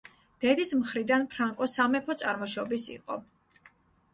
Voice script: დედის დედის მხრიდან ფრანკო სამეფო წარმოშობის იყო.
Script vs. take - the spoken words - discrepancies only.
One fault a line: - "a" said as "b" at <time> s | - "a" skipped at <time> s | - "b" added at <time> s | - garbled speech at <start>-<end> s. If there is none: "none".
- "დედის" skipped at 0.7 s